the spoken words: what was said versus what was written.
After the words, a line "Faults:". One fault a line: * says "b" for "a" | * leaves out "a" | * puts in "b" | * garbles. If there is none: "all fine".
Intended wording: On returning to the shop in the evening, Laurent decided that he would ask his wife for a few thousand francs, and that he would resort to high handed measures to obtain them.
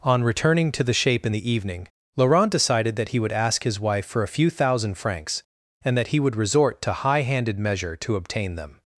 On returning to the shape in the evening, Laurent decided that he would ask his wife for a few thousand francs, and that he would resort to high handed measure to obtain them.
Faults:
* says "shape" for "shop"
* says "measure" for "measures"